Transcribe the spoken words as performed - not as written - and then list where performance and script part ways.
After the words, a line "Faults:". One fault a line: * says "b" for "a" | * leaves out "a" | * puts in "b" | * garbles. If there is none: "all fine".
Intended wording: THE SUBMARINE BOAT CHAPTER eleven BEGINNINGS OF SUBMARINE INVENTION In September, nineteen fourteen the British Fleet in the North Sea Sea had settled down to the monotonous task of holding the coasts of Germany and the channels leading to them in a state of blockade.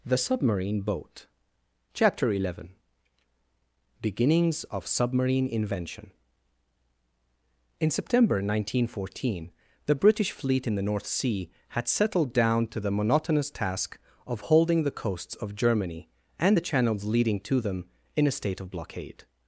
THE SUBMARINE BOAT CHAPTER eleven BEGINNINGS OF SUBMARINE INVENTION In September, nineteen fourteen the British Fleet in the North Sea had settled down to the monotonous task of holding the coasts of Germany and the channels leading to them in a state of blockade.
Faults:
* leaves out "Sea"